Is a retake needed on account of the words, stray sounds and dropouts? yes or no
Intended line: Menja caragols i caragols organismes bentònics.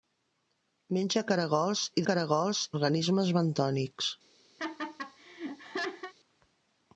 yes